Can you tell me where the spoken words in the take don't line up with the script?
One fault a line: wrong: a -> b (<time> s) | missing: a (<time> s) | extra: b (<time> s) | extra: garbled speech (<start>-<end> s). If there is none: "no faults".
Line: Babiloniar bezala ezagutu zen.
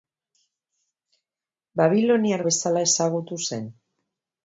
no faults